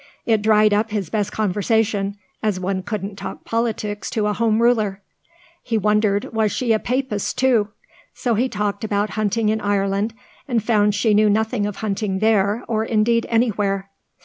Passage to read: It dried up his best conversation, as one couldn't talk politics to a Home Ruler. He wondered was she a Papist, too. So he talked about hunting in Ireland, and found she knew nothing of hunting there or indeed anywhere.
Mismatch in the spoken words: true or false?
false